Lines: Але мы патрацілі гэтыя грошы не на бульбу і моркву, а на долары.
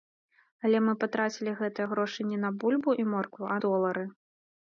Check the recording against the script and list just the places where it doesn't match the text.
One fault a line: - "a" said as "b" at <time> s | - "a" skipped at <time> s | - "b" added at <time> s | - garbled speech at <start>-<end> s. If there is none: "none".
- "на" skipped at 3.6 s